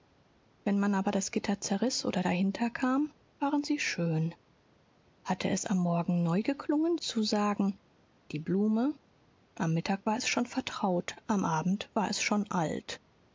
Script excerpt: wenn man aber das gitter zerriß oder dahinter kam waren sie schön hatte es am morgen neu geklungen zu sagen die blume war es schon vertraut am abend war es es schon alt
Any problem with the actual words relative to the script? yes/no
yes